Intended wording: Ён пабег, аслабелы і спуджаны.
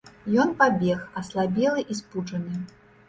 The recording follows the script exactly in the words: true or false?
true